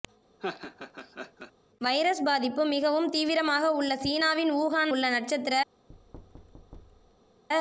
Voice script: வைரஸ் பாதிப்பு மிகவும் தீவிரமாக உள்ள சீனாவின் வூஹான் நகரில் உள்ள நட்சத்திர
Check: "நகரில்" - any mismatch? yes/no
yes